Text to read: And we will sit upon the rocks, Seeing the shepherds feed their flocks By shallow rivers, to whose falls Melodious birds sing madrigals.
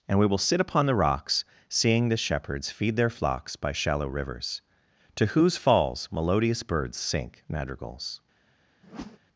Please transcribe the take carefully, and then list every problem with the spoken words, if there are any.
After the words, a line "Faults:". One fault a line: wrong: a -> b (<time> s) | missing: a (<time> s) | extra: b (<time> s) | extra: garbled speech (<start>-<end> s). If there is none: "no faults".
And we will sit upon the rocks, Seeing the shepherds feed their flocks By shallow rivers, to whose falls Melodious birds sink madrigals.
Faults:
wrong: sing -> sink (7.0 s)